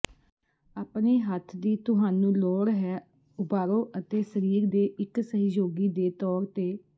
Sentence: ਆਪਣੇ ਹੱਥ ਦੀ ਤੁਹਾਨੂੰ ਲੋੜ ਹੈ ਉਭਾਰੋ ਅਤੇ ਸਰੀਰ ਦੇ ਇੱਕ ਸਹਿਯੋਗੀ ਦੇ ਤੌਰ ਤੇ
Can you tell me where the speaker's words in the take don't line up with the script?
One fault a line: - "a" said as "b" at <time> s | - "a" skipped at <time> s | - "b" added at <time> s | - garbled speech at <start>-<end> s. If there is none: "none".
none